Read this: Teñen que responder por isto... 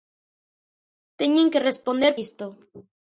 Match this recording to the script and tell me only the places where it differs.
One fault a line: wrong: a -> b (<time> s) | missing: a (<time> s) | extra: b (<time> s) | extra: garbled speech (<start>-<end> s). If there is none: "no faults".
missing: por (2.1 s)